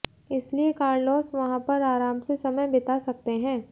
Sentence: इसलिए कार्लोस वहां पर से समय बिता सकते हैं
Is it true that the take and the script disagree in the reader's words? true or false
true